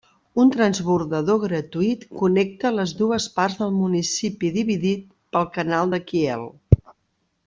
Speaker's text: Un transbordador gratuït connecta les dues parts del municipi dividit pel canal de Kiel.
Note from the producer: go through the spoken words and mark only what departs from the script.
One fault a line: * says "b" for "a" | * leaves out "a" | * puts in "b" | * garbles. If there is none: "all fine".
all fine